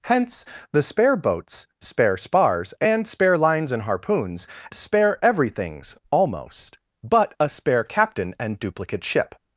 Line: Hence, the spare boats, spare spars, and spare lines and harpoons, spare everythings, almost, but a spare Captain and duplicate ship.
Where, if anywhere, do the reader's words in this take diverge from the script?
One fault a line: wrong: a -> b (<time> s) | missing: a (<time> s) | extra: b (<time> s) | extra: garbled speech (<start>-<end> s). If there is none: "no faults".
no faults